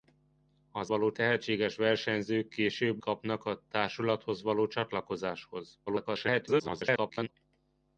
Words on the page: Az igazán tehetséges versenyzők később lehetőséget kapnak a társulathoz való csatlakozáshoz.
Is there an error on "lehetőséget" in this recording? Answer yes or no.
yes